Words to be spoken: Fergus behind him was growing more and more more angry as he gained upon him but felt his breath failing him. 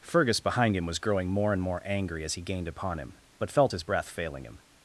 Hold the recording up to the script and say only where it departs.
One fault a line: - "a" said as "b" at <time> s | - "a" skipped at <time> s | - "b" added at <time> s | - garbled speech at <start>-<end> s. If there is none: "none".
- "more" skipped at 1.8 s